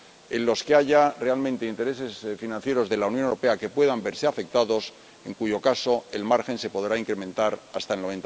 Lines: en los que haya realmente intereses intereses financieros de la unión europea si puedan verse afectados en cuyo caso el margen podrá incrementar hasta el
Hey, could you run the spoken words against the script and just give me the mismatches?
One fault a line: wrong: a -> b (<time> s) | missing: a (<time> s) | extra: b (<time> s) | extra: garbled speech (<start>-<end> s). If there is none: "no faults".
missing: intereses (2.2 s)
wrong: si -> que (3.6 s)
extra: se (6.6 s)